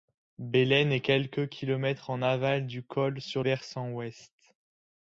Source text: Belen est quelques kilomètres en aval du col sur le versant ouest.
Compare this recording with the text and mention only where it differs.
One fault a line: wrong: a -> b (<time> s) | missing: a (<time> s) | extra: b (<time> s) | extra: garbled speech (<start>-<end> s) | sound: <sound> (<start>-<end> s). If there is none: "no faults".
missing: le (3.4 s)